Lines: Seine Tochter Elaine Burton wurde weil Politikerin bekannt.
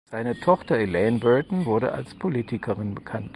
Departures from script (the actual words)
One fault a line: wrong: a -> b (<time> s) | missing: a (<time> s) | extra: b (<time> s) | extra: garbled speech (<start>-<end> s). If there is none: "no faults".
wrong: weil -> als (1.9 s)